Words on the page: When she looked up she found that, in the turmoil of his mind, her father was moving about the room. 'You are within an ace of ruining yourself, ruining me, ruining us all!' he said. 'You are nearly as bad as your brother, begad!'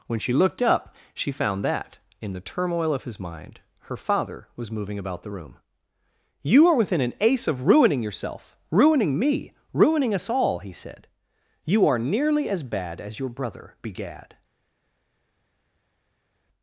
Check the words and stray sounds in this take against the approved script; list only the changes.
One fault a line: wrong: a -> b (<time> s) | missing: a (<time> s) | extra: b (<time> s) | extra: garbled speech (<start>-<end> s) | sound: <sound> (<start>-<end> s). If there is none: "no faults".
no faults